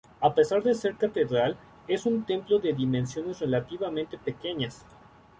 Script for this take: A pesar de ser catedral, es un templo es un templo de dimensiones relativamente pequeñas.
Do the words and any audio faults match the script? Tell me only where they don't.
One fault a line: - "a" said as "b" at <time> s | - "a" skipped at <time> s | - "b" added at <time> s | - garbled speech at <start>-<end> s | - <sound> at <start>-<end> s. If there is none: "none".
- "es un templo" skipped at 2.6 s